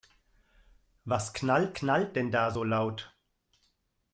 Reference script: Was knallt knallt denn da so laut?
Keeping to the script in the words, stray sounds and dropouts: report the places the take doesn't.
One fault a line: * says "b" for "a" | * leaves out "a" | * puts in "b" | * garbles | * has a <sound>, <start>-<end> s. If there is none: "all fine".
all fine